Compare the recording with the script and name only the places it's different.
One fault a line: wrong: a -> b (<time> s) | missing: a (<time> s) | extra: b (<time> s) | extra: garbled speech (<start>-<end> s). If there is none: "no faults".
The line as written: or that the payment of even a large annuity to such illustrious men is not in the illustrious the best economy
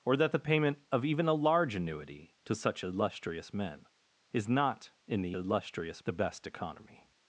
no faults